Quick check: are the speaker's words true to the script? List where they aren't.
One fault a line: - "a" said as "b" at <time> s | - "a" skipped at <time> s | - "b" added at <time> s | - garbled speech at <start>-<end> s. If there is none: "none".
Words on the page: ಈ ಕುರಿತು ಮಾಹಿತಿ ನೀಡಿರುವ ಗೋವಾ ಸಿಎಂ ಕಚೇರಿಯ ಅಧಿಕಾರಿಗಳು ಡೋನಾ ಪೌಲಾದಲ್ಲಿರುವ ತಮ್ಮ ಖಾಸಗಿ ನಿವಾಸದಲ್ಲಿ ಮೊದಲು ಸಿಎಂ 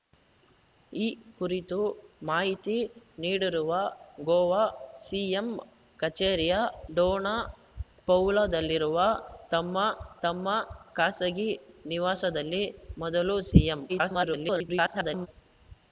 - "ಅಧಿಕಾರಿಗಳು" skipped at 6.5 s
- "ತಮ್ಮ" added at 10.2 s
- garbled speech at 13.9-15.3 s